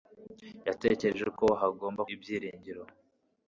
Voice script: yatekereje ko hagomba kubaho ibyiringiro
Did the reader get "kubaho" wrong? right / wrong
wrong